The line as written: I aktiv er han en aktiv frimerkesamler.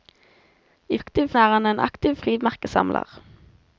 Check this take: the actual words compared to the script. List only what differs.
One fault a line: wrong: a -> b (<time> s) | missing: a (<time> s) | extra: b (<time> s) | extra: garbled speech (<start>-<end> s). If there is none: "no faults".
no faults